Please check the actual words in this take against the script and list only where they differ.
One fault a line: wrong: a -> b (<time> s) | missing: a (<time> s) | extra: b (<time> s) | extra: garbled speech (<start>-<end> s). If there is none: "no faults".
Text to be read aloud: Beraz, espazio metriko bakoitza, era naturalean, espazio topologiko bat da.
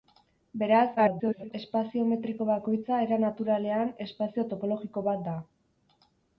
extra: garbled speech (1.0-1.5 s)